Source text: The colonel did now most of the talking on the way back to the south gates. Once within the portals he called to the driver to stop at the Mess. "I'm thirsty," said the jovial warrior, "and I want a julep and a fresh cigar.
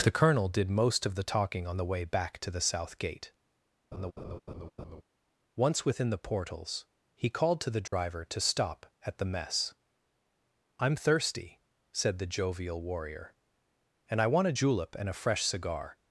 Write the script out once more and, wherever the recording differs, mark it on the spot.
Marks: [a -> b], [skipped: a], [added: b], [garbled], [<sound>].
The colonel did [skipped: now] most of the talking on the way back to the south [gates. -> gate] [laugh] Once within the portals he called to the driver [dropout] to stop at the Mess. "I'm thirsty," said the jovial warrior, "and I want a julep and a fresh cigar.